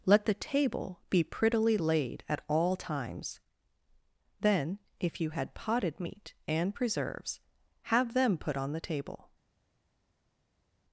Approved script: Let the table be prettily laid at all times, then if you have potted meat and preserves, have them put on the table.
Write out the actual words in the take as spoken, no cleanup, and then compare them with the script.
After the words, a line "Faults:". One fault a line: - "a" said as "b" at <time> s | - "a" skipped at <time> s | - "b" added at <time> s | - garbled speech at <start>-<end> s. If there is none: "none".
Let the table be prettily laid at all times, then if you had potted meat and preserves, have them put on the table.
Faults:
- "have" said as "had" at 5.3 s